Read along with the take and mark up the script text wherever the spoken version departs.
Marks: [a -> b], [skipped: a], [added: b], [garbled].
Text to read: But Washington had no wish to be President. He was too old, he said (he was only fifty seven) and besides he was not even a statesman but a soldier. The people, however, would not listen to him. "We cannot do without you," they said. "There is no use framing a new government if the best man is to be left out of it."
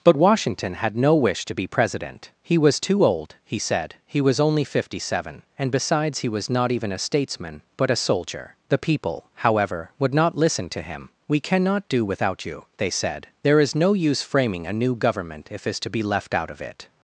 But Washington had no wish to be President. He was too old, he said (he was only fifty seven) and besides he was not even a statesman but a soldier. The people, however, would not listen to him. "We cannot do without you," they said. "There is no use framing a new government if [skipped: the best man] is to be left out of it."